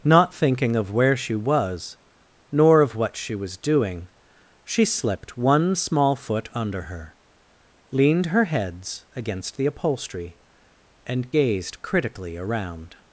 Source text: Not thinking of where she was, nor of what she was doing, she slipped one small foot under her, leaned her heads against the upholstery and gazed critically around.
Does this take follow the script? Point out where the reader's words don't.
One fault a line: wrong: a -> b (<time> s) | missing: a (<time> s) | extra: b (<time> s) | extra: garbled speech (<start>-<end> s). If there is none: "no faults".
no faults